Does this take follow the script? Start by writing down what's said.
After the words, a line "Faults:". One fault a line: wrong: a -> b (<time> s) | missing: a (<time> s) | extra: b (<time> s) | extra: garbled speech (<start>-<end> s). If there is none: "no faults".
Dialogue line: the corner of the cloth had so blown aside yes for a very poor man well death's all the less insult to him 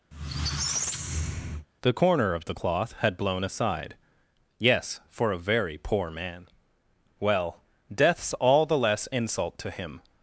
the corner of the cloth had blown aside yes for a very poor man well death's all the less insult to him
Faults:
missing: so (3.2 s)